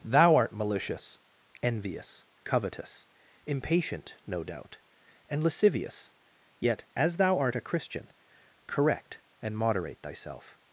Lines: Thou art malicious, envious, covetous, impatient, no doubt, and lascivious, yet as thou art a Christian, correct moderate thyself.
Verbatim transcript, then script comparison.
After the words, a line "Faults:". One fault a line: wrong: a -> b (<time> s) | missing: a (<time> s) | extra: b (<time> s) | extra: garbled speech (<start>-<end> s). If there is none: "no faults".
Thou art malicious, envious, covetous, impatient, no doubt, and lascivious, yet as thou art a Christian, correct and moderate thyself.
Faults:
extra: and (9.4 s)